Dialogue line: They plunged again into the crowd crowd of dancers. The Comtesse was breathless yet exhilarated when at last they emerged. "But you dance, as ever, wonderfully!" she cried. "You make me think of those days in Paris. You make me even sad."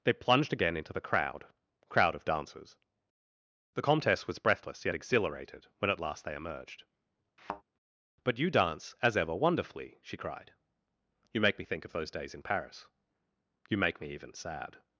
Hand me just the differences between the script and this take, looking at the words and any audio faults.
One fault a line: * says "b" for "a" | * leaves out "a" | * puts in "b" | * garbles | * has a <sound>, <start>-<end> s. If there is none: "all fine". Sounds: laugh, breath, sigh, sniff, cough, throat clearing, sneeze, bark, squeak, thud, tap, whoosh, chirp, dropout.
* has a thud, 7.4-7.6 s